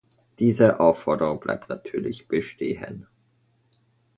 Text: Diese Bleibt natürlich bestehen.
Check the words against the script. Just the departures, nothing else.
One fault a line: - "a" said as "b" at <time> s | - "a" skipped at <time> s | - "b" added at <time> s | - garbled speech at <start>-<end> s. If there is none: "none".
- "Aufforderung" added at 0.8 s